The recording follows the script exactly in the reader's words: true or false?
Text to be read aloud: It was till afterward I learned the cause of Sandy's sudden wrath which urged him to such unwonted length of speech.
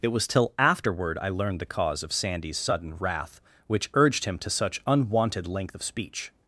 true